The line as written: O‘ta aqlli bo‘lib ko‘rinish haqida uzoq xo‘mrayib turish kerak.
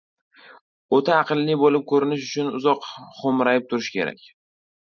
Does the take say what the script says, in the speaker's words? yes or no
no